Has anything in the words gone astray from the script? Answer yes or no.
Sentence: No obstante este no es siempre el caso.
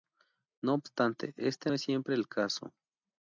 yes